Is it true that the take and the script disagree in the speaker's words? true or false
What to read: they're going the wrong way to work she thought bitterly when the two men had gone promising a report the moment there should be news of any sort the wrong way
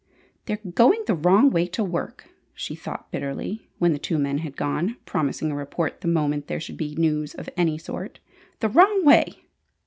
false